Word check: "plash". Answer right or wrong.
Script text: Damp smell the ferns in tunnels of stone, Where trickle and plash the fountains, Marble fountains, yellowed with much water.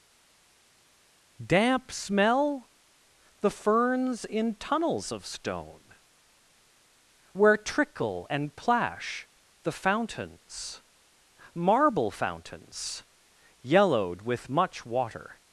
right